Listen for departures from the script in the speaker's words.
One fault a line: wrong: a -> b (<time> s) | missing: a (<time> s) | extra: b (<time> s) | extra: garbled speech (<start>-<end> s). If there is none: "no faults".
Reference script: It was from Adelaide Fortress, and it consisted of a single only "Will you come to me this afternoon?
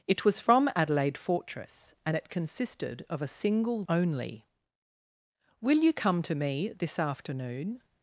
no faults